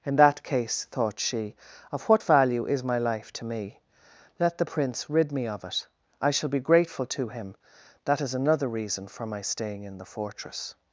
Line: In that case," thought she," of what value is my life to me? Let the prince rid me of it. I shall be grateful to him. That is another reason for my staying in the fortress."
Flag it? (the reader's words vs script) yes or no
no